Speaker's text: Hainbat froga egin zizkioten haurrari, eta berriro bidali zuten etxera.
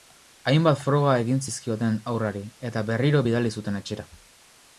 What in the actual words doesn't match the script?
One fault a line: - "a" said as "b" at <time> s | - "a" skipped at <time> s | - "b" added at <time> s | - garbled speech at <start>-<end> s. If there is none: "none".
none